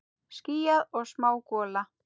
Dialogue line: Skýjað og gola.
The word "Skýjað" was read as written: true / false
true